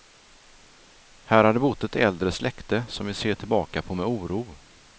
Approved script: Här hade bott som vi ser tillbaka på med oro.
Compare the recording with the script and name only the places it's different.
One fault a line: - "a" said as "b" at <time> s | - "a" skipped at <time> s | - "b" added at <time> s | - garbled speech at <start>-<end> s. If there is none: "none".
- "ett äldre släkte" added at 1.8 s